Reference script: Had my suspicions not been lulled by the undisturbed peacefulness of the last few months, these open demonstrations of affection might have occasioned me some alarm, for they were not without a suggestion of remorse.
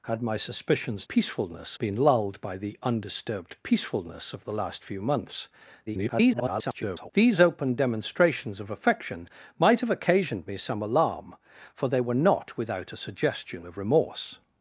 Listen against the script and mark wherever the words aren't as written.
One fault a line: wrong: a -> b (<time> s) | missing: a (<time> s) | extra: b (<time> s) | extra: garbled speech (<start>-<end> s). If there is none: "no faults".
wrong: not -> peacefulness (1.1 s)
extra: garbled speech (5.9-7.1 s)